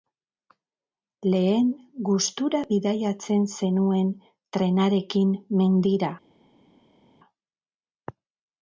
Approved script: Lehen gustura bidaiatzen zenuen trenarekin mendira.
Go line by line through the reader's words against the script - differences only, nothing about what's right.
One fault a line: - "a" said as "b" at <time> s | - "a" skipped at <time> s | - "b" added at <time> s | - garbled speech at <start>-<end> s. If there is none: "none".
none